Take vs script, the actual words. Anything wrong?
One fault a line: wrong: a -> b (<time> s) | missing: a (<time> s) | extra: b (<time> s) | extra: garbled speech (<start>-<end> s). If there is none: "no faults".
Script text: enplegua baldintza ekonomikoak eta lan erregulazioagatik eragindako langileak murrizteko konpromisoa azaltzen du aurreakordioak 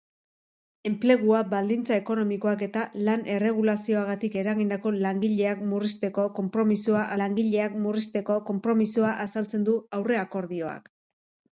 extra: langileak murrizteko konpromisoa (7.2 s)